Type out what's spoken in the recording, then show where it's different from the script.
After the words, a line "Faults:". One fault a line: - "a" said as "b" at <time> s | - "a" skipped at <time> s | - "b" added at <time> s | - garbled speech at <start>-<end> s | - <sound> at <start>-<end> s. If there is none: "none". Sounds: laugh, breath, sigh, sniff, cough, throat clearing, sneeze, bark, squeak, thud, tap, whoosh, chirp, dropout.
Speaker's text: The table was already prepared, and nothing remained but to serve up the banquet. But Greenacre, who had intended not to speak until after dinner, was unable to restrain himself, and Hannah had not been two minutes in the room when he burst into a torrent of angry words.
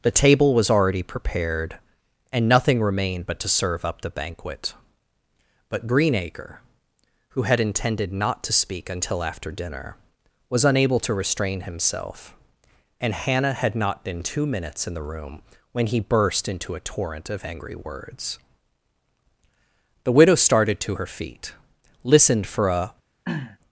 The table was already prepared, and nothing remained but to serve up the banquet. But Greenacre, who had intended not to speak until after dinner, was unable to restrain himself, and Hannah had not been two minutes in the room when he burst into a torrent of angry words. The widow started to her feet, listened for a
Faults:
- "The widow started to her feet listened for a" added at 20.0 s
- throat clearing at 23.3-23.6 s